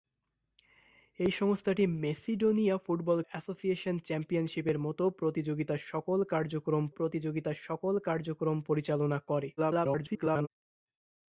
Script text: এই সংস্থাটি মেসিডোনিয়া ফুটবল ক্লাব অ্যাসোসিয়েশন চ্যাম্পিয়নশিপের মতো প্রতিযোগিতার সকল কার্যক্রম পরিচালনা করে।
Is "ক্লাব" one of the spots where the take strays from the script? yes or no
yes